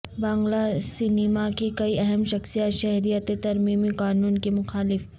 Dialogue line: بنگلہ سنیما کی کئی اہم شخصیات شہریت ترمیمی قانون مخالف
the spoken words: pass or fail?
fail